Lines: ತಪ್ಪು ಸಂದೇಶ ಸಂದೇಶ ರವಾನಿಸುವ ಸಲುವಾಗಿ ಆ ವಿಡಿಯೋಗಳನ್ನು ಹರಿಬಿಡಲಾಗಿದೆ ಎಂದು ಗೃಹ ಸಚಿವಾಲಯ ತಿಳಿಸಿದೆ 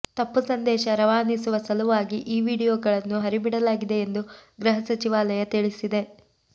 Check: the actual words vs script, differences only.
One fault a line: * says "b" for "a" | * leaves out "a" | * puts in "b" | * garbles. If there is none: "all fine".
* leaves out "ಸಂದೇಶ"
* says "ಈ" for "ಆ"